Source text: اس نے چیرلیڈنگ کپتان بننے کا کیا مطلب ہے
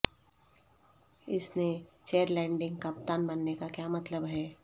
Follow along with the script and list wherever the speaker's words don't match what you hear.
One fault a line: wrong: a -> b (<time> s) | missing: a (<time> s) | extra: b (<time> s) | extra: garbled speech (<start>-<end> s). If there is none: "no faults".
no faults